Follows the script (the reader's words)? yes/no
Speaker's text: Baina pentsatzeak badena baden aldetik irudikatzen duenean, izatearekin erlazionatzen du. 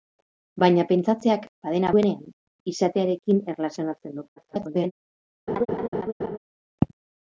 no